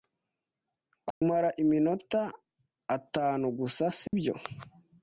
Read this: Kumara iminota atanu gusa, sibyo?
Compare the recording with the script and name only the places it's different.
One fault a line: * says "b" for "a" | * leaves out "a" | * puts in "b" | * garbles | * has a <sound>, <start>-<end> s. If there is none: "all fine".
* has a dropout, 1.1-1.2 s
* has a dropout, 4.1-4.1 s